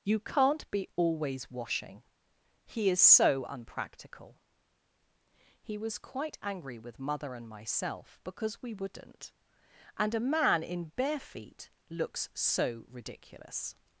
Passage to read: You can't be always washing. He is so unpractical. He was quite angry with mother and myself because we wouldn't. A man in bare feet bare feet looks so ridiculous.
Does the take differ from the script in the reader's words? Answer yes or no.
yes